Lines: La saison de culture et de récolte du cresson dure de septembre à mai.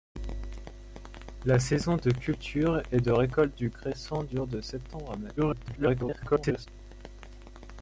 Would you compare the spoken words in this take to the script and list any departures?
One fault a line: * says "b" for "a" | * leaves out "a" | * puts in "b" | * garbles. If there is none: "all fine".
* garbles